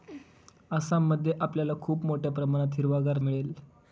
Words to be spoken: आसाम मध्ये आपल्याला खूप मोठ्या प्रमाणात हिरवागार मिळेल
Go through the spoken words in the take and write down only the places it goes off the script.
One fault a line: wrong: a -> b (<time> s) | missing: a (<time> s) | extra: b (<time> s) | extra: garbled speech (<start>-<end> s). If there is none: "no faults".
no faults